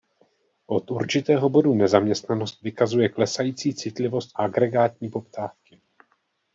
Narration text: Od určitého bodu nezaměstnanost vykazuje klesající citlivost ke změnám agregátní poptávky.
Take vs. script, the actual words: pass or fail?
fail